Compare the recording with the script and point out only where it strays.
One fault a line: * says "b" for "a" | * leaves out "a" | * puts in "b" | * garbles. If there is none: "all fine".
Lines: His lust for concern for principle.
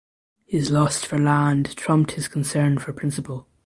* puts in "land trumped his"